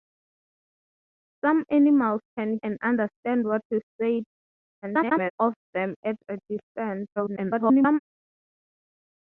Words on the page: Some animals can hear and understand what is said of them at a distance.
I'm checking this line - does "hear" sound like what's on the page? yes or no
no